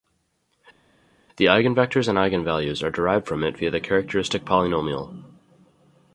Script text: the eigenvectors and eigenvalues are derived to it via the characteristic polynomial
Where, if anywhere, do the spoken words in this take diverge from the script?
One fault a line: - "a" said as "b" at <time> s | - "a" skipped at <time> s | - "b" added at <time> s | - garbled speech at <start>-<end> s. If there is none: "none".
- "to" said as "from" at 3.3 s